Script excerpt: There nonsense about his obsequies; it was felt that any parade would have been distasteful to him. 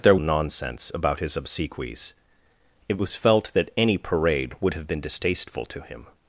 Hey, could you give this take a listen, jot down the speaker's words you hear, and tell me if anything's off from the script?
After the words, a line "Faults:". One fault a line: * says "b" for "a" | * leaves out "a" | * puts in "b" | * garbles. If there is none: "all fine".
There nonsense about his obsequies; it was felt that any parade would have been distasteful to him.
Faults:
all fine